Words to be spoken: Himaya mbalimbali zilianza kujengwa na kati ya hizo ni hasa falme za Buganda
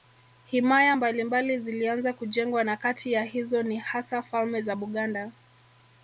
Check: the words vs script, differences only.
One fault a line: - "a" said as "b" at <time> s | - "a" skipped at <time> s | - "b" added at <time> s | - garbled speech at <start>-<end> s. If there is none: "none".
none